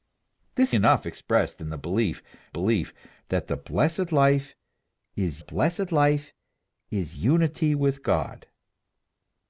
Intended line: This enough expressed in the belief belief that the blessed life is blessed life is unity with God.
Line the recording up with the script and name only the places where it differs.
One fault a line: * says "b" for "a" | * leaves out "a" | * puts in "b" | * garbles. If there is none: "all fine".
all fine